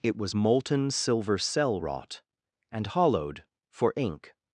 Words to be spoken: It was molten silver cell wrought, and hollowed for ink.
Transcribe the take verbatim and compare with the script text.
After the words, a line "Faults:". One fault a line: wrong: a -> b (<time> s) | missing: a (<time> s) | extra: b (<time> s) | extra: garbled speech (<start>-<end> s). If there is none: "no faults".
It was molten silver cell wrought, and hollowed for ink.
Faults:
no faults